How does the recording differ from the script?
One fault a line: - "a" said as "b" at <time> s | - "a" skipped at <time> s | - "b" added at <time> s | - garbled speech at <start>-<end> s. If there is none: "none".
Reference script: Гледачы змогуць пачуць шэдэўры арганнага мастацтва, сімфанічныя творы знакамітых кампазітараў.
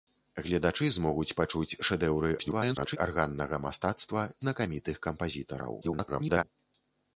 - garbled speech at 2.4-3.0 s
- "сімфанічныя творы" skipped at 4.2 s
- garbled speech at 5.8-6.4 s